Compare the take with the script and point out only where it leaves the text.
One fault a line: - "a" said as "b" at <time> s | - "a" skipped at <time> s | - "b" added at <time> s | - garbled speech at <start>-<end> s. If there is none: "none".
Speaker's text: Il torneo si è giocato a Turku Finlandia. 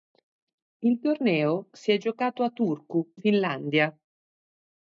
none